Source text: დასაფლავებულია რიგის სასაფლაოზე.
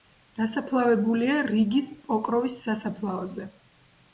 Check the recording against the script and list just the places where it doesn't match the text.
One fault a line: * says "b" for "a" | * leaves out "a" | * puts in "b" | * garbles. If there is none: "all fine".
* puts in "პოკროვის"